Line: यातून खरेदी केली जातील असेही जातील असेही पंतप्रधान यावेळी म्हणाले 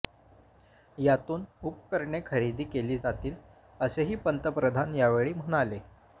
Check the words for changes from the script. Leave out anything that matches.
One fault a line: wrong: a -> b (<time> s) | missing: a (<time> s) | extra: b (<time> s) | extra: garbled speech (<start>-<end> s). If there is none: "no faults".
extra: उपकरणे (1.6 s)
missing: जातील असेही (4.2 s)